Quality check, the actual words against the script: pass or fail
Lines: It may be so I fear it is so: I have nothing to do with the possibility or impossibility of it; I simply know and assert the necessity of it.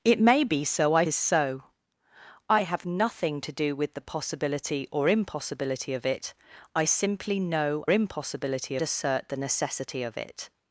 fail